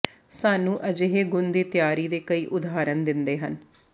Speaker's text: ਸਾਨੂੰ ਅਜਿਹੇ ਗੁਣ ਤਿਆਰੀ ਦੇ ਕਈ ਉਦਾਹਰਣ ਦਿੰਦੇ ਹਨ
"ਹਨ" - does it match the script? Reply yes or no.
yes